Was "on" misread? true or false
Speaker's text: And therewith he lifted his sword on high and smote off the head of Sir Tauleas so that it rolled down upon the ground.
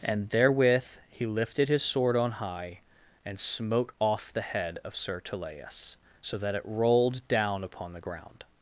false